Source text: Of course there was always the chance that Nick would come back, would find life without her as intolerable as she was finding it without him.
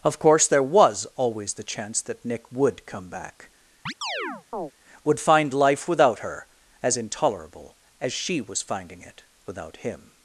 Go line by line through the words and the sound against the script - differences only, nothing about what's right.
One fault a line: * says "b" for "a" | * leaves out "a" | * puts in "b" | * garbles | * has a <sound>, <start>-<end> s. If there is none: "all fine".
* has a chirp, 3.9-4.7 s